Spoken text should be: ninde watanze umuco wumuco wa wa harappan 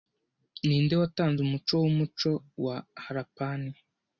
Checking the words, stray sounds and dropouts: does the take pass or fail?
fail